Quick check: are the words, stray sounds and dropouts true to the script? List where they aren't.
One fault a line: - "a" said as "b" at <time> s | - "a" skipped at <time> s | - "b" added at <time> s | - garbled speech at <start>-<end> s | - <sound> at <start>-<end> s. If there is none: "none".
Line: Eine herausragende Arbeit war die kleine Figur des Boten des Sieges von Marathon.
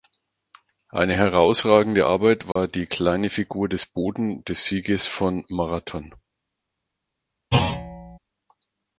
- dropout at 2.5-2.6 s
- thud at 7.5-8.2 s